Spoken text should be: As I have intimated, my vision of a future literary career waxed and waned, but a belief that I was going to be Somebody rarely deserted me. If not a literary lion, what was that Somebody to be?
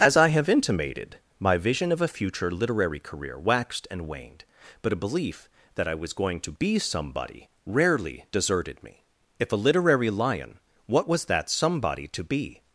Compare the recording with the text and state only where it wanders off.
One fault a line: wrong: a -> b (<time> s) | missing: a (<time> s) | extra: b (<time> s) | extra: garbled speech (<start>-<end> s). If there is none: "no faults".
missing: not (9.5 s)